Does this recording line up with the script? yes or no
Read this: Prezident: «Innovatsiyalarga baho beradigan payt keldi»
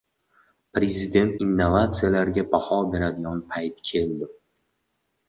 yes